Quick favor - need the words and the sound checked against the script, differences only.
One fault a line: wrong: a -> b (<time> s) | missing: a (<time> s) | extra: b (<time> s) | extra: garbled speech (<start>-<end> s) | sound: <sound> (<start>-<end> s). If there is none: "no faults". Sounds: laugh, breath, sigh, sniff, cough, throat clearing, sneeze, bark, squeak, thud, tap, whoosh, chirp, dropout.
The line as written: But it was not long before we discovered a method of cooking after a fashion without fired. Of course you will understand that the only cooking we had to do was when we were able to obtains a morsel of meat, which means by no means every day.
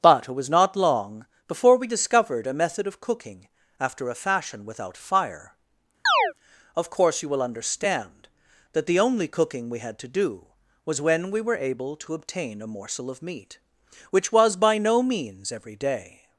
wrong: fired -> fire (5.0 s)
sound: chirp (6.1-6.3 s)
wrong: obtains -> obtain (12.1 s)
wrong: means -> was (14.3 s)